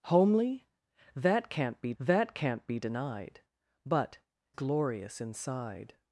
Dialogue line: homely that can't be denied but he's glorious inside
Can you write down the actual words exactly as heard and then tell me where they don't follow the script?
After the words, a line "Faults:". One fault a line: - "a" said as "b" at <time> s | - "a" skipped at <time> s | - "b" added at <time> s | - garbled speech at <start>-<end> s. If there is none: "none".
homely that can't be that can't be denied but glorious inside
Faults:
- "that can't be" added at 2.0 s
- "he's" skipped at 4.2 s